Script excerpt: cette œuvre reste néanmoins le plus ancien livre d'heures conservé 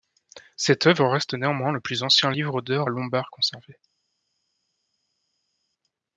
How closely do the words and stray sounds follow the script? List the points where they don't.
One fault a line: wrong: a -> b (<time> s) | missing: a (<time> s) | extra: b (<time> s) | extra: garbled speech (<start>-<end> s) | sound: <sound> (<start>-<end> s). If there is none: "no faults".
extra: lombard (2.9 s)